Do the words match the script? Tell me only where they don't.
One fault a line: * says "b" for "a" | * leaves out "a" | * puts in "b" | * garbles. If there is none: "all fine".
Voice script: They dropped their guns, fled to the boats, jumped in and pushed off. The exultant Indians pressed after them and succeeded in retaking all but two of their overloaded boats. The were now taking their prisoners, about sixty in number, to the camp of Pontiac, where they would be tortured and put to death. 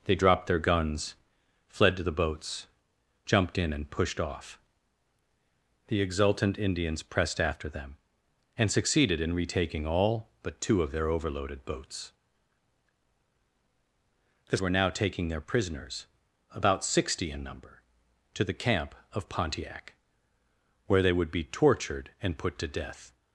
all fine